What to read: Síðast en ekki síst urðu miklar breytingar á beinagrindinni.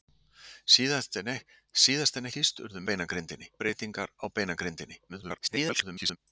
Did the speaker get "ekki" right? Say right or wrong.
wrong